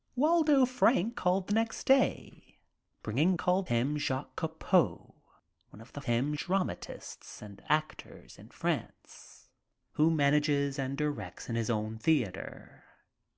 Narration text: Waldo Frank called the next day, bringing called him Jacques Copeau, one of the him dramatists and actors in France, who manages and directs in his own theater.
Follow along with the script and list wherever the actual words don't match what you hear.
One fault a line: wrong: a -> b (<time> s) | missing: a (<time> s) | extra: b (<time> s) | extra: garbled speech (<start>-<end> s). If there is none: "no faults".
no faults